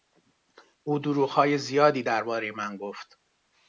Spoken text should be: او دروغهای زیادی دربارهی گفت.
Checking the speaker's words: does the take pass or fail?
fail